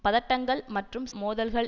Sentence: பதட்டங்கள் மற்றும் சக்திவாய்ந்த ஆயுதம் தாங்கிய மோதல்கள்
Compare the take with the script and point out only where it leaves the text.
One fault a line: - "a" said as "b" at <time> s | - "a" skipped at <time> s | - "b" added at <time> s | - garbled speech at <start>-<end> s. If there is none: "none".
- "சக்திவாய்ந்த ஆயுதம் தாங்கிய" skipped at 1.1 s